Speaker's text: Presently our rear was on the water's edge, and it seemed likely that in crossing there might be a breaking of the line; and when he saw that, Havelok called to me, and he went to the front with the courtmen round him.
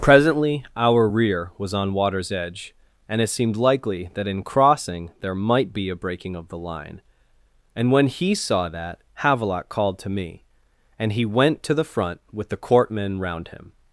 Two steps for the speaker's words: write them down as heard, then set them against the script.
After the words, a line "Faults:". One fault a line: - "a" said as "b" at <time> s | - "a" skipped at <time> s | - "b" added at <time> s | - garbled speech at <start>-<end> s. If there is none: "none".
Presently our rear was on water's edge, and it seemed likely that in crossing there might be a breaking of the line; and when he saw that, Havelok called to me, and he went to the front with the courtmen round him.
Faults:
- "the" skipped at 1.9 s